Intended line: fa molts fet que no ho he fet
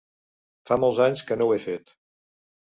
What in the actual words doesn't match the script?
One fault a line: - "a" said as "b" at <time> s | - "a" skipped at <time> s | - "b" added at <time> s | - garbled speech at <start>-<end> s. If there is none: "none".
- "fet" said as "anys" at 1.1 s